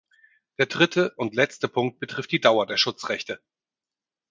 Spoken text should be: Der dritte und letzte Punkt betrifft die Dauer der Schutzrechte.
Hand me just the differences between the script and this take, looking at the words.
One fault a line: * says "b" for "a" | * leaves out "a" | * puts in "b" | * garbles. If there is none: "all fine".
all fine